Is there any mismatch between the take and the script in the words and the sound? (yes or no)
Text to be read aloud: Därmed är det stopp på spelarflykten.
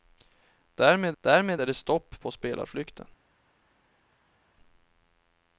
yes